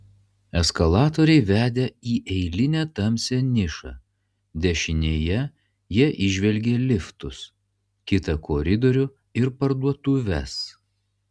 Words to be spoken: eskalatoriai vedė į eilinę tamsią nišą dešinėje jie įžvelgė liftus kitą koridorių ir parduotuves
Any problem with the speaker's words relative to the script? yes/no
no